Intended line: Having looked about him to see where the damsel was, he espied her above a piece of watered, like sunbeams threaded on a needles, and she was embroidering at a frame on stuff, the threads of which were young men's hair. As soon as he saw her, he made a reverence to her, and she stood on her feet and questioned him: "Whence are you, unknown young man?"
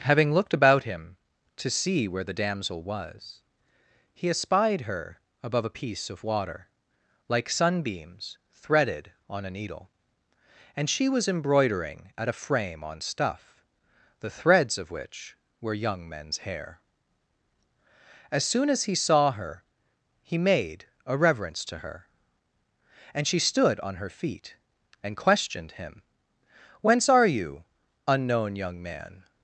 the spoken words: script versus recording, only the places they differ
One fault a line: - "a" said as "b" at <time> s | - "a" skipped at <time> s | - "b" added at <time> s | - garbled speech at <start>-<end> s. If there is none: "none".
- "watered" said as "water" at 6.2 s
- "needles" said as "needle" at 9.5 s